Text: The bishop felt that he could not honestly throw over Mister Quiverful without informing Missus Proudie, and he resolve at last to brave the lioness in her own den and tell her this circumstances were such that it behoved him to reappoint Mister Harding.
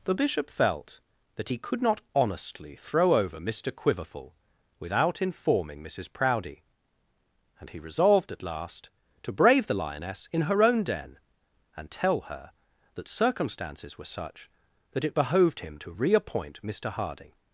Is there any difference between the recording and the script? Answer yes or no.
yes